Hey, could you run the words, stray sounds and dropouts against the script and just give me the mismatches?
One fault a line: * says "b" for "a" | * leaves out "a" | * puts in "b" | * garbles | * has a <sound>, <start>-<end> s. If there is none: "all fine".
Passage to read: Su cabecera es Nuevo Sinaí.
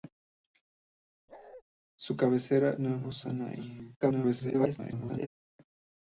* has a bark, 1.3-1.6 s
* leaves out "es"
* garbles